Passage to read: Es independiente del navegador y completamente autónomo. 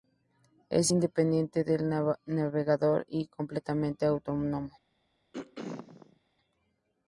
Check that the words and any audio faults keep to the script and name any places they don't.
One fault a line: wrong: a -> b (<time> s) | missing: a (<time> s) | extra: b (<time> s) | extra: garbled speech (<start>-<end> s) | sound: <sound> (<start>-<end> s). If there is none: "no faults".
sound: throat clearing (5.3-6.2 s)